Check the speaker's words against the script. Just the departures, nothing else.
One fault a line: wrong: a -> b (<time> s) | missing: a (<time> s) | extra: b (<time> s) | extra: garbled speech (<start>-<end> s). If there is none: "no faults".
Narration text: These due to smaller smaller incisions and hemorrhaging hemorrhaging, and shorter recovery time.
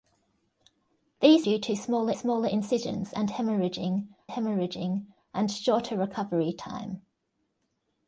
no faults